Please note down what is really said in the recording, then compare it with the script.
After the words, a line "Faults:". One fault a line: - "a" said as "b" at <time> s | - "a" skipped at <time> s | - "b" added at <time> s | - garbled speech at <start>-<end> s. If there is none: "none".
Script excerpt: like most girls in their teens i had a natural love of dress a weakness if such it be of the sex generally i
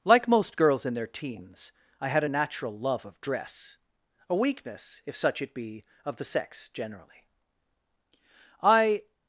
like most girls in their teens i had a natural love of dress a weakness if such it be of the sex generally i
Faults:
none